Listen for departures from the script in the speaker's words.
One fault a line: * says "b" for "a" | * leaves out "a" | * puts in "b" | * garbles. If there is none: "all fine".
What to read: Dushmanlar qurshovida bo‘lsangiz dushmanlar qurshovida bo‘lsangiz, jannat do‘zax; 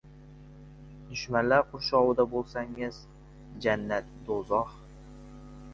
* leaves out "dushmanlar qurshovida bo‘lsangiz"